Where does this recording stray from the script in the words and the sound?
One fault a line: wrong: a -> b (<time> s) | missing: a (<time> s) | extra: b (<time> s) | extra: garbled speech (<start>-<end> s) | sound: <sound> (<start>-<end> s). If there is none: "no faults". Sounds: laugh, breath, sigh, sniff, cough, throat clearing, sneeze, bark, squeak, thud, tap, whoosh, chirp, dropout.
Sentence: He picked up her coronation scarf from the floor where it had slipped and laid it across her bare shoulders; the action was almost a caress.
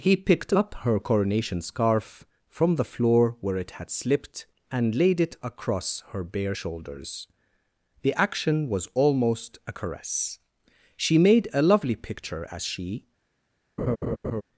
extra: She made a lovely picture as she (10.9 s)
sound: laugh (13.8-14.4 s)